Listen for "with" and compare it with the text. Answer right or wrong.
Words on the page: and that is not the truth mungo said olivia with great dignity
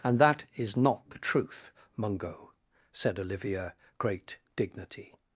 wrong